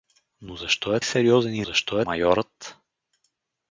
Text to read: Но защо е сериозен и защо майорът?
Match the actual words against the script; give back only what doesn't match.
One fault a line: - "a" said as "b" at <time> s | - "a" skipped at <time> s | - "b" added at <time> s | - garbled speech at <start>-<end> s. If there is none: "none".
none